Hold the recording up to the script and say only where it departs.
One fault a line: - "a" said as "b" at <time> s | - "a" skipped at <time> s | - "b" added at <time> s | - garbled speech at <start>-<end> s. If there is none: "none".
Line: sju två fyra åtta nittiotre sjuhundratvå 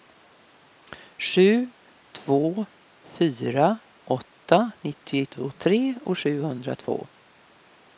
none